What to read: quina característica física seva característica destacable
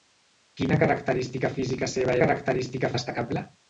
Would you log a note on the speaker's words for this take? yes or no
no